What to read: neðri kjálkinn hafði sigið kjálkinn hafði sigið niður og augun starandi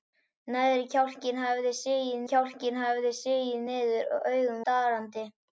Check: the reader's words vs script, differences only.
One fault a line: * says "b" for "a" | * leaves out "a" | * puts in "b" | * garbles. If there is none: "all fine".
all fine